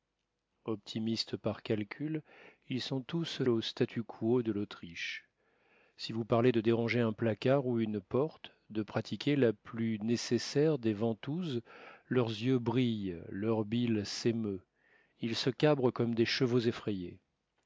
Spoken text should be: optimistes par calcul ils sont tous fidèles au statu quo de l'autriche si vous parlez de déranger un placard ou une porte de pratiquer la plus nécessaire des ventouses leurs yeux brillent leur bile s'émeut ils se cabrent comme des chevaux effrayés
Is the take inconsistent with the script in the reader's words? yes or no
yes